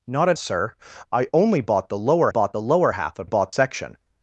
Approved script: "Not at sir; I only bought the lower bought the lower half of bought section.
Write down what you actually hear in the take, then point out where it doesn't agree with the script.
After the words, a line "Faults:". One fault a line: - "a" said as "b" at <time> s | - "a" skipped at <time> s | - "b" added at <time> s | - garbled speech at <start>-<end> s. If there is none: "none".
"Not at sir; I only bought the lower bought the lower half of bought section.
Faults:
none